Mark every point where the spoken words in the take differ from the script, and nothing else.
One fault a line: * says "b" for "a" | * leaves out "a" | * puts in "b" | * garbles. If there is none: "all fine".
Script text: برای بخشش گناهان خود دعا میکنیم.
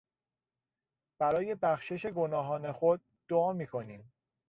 all fine